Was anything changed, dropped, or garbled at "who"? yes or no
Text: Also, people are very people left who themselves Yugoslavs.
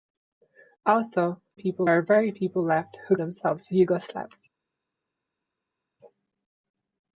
no